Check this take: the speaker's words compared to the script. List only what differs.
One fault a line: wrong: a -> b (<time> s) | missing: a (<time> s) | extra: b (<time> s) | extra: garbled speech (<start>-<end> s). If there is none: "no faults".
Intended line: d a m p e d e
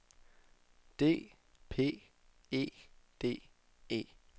missing: a m (1.3 s)